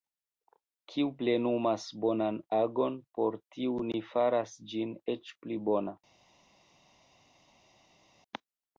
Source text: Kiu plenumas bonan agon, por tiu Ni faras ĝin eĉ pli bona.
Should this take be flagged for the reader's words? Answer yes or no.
no